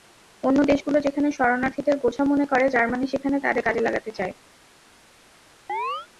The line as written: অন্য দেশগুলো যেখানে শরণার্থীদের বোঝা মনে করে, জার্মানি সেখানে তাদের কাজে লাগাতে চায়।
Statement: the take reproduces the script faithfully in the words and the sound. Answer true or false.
false